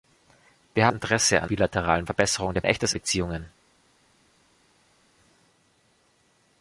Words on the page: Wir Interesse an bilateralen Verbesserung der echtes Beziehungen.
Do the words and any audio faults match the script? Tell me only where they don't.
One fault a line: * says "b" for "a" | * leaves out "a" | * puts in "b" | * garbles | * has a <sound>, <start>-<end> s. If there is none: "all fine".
all fine